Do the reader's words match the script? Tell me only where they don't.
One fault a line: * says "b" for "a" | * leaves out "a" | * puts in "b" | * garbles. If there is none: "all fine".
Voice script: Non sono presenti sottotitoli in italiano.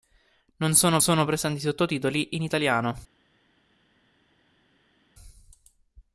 * puts in "sono"